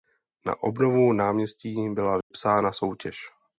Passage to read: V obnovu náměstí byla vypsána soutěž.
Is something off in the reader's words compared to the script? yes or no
yes